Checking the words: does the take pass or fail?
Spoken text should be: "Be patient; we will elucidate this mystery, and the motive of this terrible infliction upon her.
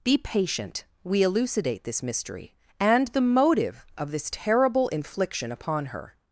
fail